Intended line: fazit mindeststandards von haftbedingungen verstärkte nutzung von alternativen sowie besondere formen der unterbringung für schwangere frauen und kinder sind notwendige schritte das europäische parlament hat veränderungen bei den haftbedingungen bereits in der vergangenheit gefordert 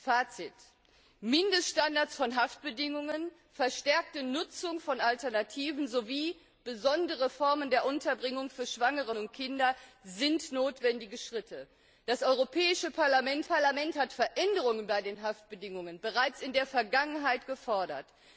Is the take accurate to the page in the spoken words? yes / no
no